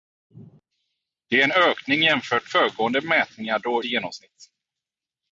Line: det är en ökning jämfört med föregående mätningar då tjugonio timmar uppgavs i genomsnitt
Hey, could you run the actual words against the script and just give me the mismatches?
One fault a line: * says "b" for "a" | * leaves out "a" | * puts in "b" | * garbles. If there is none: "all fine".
* leaves out "med"
* leaves out "tjugonio timmar uppgavs"